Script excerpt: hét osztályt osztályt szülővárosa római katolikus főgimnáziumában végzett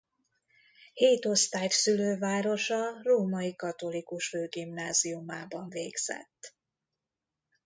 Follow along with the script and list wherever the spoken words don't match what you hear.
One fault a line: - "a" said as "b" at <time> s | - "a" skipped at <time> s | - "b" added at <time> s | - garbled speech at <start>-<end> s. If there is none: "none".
- "osztályt" skipped at 1.7 s